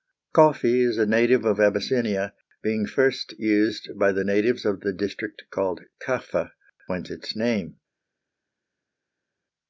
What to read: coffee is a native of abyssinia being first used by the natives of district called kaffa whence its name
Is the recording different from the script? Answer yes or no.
yes